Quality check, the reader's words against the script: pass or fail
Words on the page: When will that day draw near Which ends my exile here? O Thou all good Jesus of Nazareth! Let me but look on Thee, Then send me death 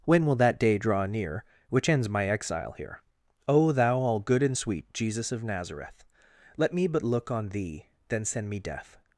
fail